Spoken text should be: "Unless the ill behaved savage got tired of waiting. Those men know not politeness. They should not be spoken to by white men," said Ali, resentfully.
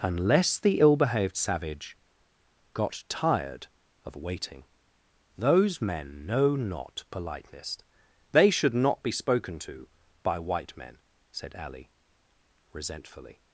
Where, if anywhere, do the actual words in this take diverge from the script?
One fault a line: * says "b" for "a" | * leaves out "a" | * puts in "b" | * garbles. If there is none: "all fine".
all fine